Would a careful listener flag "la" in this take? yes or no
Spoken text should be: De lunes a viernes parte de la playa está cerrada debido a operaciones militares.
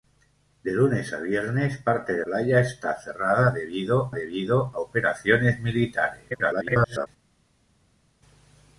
yes